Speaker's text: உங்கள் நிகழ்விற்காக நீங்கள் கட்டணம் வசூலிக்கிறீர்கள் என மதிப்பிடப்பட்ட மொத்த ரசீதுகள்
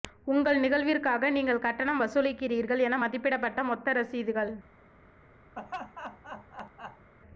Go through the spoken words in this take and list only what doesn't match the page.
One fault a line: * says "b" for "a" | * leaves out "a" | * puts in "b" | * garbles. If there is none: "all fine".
all fine